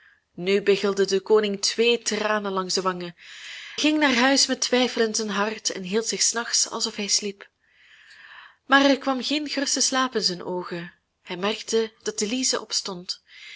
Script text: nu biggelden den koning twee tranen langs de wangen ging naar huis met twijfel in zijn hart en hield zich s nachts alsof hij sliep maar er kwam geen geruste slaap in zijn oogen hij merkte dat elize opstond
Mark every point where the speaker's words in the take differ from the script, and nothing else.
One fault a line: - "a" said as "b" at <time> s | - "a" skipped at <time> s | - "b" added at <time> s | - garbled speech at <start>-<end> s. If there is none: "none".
none